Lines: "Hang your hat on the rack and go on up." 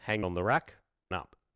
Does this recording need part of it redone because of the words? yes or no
yes